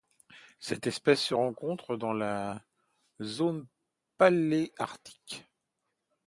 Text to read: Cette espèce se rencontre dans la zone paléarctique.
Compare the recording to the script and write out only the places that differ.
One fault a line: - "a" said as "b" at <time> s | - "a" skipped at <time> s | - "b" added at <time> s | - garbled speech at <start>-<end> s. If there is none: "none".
none